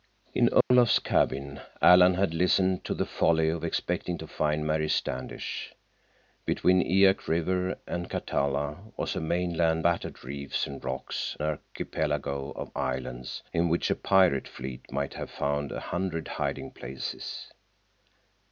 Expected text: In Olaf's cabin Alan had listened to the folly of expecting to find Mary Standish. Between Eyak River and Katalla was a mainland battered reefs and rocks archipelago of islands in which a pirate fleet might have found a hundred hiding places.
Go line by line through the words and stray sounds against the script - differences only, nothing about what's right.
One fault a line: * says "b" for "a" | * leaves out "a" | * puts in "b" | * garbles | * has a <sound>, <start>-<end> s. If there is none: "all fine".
* has a dropout, 0.6-0.7 s